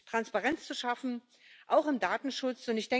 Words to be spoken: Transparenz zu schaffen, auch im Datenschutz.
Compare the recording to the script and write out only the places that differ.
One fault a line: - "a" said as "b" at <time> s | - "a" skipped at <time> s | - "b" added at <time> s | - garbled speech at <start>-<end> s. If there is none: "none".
none